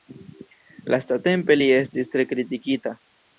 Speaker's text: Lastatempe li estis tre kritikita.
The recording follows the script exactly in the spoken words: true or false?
true